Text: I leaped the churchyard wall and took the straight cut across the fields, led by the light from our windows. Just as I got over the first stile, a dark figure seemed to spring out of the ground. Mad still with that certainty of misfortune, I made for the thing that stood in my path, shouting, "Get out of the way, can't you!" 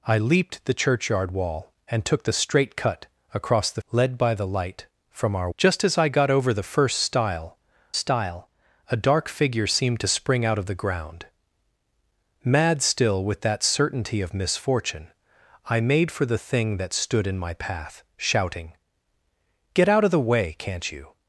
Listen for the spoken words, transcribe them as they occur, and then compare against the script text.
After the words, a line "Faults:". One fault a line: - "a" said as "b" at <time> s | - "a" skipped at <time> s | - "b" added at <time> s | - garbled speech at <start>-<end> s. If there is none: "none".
I leaped the churchyard wall and took the straight cut across the led by the light from our. Just as I got over the first stile stile, a dark figure seemed to spring out of the ground. Mad still with that certainty of misfortune, I made for the thing that stood in my path, shouting, "Get out of the way, can't you!"
Faults:
- "fields" skipped at 3.8 s
- "windows" skipped at 5.5 s
- "stile" added at 7.9 s